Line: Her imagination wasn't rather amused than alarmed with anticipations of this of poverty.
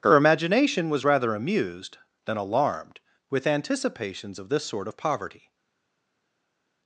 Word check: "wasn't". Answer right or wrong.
wrong